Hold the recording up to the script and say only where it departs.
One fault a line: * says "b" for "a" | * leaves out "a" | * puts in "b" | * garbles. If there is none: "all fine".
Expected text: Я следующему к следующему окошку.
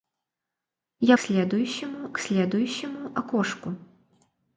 all fine